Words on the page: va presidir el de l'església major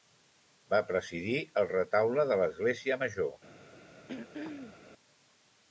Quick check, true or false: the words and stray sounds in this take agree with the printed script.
false